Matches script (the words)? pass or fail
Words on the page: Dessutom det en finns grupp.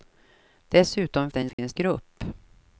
pass